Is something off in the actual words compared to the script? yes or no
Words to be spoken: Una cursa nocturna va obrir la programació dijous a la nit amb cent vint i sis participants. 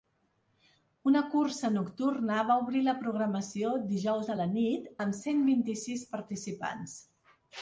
no